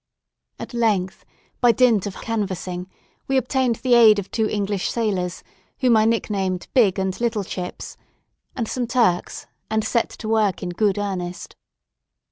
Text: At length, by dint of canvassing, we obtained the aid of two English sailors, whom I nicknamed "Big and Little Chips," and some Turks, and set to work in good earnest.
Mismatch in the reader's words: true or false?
false